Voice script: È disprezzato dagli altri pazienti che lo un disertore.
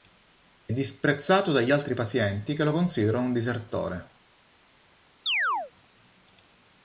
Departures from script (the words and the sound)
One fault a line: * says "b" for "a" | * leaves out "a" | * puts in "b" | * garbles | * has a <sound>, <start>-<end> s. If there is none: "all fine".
* puts in "considerano"
* has a chirp, 5.3-5.7 s